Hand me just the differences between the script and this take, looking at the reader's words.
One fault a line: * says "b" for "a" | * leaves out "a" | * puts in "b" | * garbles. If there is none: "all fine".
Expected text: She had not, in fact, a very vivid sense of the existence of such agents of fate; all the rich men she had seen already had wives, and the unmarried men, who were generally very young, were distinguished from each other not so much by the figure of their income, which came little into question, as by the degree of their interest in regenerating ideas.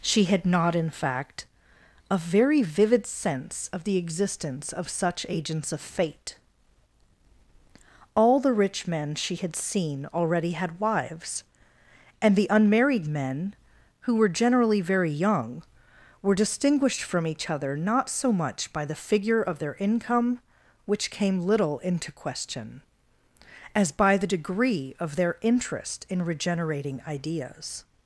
all fine